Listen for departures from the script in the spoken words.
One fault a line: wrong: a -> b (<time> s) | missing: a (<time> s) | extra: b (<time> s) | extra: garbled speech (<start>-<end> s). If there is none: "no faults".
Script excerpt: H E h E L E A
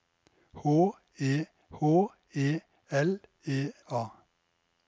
no faults